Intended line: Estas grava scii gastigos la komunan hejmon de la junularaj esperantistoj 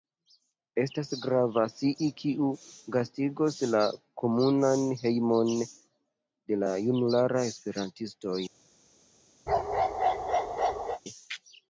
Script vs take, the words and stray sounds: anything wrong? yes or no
yes